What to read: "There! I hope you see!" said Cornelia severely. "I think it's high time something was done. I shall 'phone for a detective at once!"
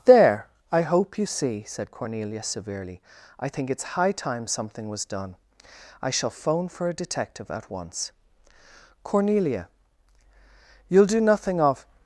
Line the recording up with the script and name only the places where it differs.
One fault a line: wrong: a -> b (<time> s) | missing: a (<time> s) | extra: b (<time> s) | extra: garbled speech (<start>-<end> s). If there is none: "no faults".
extra: Cornelia you'll do nothing of (9.0 s)